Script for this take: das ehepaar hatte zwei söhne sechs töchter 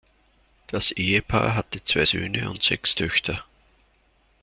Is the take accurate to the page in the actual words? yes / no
no